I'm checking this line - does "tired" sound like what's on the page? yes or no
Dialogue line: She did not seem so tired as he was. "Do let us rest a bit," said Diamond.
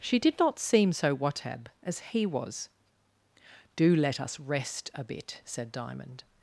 no